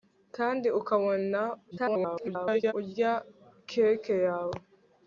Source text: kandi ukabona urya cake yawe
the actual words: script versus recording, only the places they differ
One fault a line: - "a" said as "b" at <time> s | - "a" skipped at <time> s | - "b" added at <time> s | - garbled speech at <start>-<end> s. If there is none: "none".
- garbled speech at 1.7-2.7 s